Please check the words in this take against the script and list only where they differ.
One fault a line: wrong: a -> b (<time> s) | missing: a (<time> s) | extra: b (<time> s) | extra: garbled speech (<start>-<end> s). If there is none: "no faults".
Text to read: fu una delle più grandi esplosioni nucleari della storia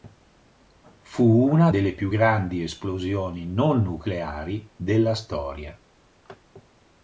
extra: non (3.5 s)